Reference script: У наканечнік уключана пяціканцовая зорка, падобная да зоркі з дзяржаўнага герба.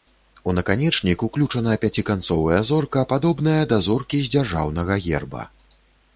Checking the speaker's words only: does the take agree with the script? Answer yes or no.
yes